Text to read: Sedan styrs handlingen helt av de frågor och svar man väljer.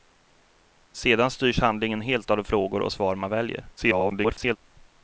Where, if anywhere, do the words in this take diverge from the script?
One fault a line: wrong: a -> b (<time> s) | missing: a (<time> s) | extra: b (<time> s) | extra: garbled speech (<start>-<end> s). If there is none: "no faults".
extra: garbled speech (3.8-4.6 s)